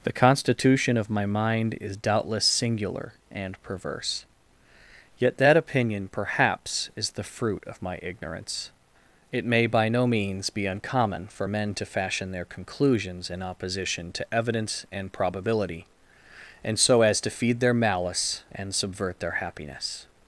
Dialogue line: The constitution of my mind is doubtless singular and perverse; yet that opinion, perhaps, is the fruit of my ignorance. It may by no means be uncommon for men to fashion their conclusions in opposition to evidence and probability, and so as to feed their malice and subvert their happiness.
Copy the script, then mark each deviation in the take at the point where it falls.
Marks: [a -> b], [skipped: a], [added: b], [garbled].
The constitution of my mind is doubtless singular and perverse; yet that opinion, perhaps, is the fruit of my ignorance. It may by no means be uncommon for men to fashion their conclusions in opposition to evidence and probability, and so as to feed their malice and subvert their happiness.